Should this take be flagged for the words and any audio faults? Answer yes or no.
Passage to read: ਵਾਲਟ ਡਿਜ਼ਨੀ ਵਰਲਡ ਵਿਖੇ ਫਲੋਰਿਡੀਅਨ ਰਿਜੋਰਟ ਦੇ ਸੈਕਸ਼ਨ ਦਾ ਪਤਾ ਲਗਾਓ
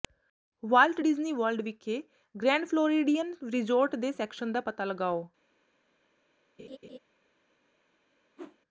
yes